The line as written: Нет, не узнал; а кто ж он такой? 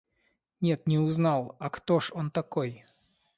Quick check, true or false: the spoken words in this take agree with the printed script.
true